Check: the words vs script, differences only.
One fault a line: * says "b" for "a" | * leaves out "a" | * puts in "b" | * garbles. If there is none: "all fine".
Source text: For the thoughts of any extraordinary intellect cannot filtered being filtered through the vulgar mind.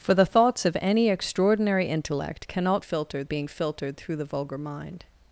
all fine